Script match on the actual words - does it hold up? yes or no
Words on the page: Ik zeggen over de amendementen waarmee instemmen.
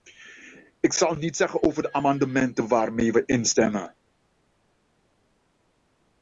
no